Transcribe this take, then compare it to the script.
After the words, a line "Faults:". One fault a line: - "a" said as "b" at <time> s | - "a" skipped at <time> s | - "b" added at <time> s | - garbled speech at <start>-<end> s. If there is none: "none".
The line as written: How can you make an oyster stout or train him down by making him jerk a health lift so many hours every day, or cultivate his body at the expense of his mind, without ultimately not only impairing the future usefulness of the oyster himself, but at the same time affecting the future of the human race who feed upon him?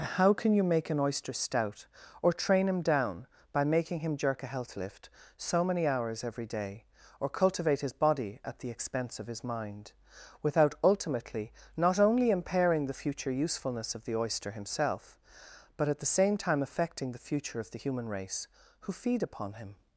How can you make an oyster stout or train him down by making him jerk a health lift so many hours every day, or cultivate his body at the expense of his mind, without ultimately not only impairing the future usefulness of the oyster himself, but at the same time affecting the future of the human race who feed upon him?
Faults:
none